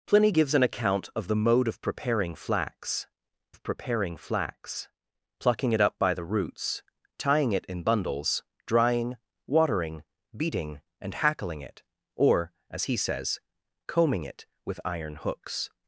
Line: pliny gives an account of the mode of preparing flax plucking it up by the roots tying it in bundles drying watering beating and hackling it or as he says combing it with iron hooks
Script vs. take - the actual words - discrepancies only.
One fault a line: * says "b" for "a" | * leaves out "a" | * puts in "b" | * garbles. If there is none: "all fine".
* puts in "of preparing flax"